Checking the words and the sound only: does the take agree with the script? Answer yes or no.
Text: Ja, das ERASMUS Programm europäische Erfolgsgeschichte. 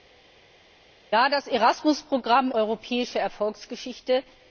yes